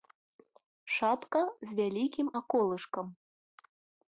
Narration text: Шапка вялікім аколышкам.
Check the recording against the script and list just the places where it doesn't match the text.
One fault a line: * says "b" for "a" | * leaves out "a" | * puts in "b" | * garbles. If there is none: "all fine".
* puts in "з"